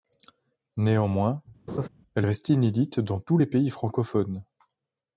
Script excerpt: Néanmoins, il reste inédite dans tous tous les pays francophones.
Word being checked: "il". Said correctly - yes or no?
no